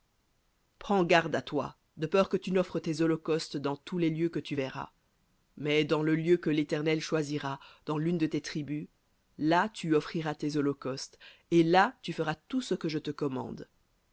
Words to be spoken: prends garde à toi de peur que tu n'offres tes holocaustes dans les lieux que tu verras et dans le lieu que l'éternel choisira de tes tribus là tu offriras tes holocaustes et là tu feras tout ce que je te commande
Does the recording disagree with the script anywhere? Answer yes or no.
yes